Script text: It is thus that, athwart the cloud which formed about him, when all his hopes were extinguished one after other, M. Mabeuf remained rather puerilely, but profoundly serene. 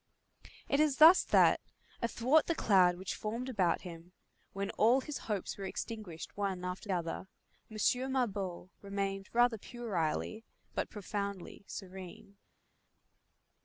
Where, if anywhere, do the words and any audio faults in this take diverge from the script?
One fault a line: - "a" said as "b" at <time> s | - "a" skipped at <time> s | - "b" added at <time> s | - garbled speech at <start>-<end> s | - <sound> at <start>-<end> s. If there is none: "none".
none